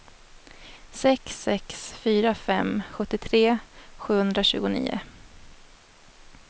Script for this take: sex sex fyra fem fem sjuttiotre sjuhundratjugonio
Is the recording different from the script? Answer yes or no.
yes